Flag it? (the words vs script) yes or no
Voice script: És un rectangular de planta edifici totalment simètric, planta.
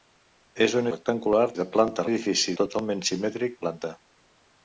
no